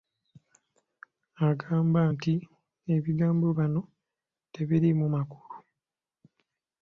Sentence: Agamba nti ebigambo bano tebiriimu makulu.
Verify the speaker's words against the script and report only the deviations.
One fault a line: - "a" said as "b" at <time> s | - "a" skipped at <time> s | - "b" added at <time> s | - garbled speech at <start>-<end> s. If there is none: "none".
none